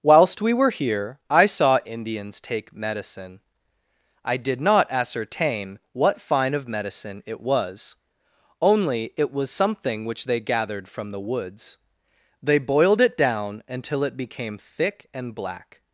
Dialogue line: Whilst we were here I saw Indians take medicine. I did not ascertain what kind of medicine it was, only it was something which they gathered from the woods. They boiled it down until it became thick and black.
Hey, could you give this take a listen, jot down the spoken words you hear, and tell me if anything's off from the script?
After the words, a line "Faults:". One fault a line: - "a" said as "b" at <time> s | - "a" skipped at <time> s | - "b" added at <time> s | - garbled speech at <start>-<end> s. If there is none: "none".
Whilst we were here I saw Indians take medicine. I did not ascertain what fine of medicine it was, only it was something which they gathered from the woods. They boiled it down until it became thick and black.
Faults:
- "kind" said as "fine" at 6.2 s